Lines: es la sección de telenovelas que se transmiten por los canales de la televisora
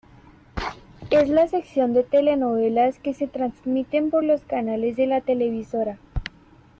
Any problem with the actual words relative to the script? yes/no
no